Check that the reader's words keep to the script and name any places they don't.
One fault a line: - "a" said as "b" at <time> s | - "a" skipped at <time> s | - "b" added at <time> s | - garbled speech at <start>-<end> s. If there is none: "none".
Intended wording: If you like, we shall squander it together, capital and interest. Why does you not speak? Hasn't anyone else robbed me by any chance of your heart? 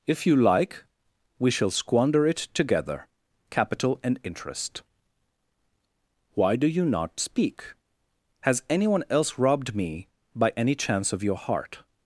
- "does" said as "do" at 6.5 s
- "Hasn't" said as "Has" at 8.4 s